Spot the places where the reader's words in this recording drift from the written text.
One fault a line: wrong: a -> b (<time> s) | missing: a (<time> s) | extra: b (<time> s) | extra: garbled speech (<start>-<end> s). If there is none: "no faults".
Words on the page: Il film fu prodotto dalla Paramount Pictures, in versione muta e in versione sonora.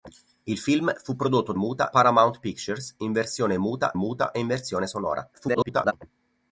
wrong: dalla -> muta (1.5 s)
extra: muta (3.9 s)
extra: garbled speech (5.3-5.9 s)